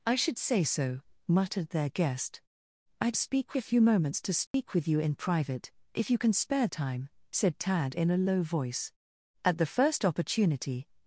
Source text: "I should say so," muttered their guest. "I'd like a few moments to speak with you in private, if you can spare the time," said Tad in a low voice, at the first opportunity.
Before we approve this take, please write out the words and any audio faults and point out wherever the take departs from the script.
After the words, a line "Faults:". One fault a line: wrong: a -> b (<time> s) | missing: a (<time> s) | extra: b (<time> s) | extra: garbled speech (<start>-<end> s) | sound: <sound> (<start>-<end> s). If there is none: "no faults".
"I should say so," muttered their guest. "I'd speak a few moments to speak with you in private, if you can spare time," said Tad in a low voice, at the first opportunity.
Faults:
wrong: like -> speak (3.2 s)
sound: dropout (4.5-4.5 s)
missing: the (6.7 s)